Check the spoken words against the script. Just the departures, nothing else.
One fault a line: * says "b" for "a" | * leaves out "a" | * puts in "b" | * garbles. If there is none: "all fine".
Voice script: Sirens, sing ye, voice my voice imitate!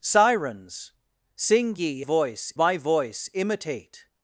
all fine